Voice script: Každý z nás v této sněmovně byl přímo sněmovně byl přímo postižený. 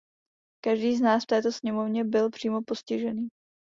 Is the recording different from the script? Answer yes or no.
yes